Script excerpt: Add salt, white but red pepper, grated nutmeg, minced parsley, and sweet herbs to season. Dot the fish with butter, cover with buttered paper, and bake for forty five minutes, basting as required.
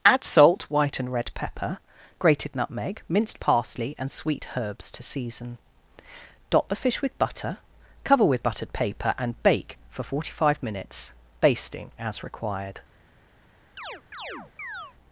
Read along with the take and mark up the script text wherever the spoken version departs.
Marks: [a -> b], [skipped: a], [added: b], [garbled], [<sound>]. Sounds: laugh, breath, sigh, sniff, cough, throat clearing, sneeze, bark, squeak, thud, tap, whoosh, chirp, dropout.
Add salt, white [but -> and] red pepper, grated nutmeg, minced parsley, and sweet herbs to season. Dot the fish with butter, cover with buttered paper, and bake for forty five minutes, basting as required. [chirp]